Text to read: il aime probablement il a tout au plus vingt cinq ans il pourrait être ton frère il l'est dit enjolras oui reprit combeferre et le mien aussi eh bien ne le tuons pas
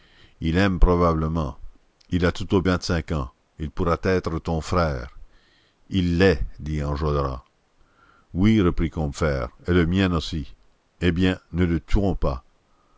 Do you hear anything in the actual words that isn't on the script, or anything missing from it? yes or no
yes